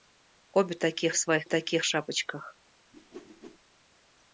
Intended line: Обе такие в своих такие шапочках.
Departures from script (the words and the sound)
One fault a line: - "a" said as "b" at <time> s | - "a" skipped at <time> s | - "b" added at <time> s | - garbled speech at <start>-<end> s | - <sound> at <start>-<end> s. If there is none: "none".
- whoosh at 2.9-3.6 s